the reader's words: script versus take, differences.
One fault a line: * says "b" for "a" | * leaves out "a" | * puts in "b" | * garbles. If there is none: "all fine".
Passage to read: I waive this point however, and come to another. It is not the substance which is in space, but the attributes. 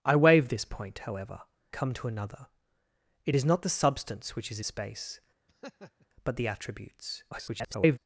* leaves out "and"
* leaves out "in"
* garbles